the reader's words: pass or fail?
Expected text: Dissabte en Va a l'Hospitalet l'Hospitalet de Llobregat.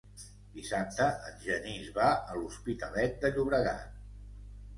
fail